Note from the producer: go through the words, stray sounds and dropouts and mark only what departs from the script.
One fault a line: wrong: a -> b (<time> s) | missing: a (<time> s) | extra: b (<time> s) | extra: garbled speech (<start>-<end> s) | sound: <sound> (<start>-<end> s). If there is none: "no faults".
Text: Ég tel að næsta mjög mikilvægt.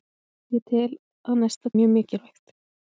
no faults